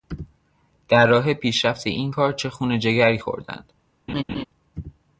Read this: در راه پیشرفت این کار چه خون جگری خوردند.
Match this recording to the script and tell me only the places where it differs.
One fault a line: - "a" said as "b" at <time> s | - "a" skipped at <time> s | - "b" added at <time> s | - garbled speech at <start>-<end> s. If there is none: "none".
none